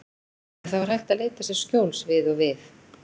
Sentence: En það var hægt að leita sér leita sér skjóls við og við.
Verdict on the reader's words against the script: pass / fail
fail